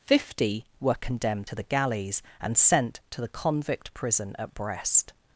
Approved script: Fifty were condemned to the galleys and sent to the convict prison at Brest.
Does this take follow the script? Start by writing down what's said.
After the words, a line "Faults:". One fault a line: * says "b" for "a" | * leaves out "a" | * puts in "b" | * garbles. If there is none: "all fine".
Fifty were condemned to the galleys and sent to the convict prison at Brest.
Faults:
all fine